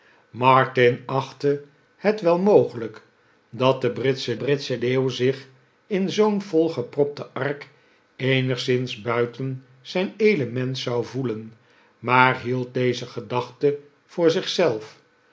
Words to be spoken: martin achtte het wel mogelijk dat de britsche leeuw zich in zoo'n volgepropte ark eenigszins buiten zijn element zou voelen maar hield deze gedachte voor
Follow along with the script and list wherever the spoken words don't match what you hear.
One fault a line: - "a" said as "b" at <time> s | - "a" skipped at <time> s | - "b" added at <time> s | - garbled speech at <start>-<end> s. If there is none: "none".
- "britsche" added at 4.4 s